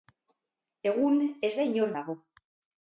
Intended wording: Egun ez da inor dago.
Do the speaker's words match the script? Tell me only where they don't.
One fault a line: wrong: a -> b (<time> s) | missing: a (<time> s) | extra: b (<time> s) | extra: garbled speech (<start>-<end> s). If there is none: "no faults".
no faults